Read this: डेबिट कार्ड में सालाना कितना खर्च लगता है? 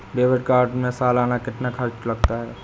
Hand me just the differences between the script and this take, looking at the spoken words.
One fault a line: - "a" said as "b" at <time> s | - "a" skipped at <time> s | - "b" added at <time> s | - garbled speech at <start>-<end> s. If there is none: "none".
none